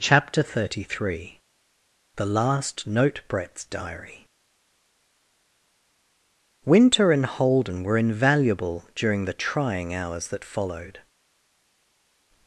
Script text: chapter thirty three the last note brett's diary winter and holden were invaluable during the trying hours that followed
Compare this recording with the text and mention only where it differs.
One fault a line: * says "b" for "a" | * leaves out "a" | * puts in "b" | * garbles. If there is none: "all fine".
all fine